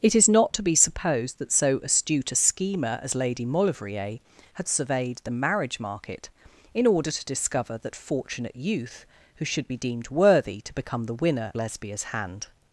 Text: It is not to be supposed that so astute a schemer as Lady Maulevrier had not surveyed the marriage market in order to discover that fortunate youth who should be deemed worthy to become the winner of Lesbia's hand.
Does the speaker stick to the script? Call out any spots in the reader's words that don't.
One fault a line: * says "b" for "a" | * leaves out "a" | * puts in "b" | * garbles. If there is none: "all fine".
* leaves out "not"
* leaves out "of"